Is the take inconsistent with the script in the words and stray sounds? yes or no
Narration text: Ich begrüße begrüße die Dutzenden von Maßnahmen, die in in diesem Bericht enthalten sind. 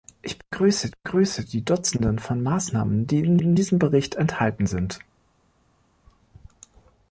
no